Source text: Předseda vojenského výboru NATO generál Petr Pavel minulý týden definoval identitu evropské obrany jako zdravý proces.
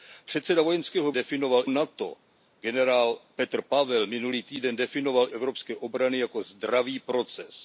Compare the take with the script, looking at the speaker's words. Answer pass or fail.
fail